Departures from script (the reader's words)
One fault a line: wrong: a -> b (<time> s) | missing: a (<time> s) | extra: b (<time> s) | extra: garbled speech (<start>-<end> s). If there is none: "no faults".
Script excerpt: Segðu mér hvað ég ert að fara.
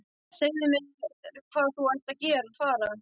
wrong: ég -> þú (1.8 s)